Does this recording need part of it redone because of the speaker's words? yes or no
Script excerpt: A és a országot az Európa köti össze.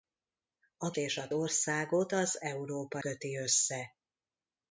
no